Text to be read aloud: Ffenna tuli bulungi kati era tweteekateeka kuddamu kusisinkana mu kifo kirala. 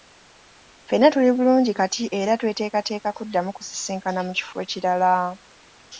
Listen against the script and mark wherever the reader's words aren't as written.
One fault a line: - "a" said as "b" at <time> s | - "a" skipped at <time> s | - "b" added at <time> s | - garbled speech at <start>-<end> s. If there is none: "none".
none